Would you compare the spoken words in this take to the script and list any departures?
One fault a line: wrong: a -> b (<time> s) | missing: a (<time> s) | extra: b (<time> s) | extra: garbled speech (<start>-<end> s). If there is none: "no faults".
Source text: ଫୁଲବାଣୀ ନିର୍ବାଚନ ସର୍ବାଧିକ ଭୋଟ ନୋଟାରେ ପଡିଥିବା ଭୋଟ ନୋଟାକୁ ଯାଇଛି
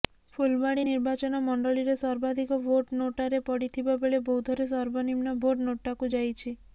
extra: ମଣ୍ଡଳୀରେ (1.5 s)
extra: ବେଳେ ବୌଦ୍ଧରେ ସର୍ବନିମ୍ନ (4.0 s)